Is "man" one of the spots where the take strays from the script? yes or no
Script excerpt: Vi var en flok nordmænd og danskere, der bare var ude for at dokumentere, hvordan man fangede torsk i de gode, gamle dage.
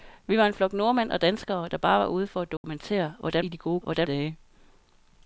yes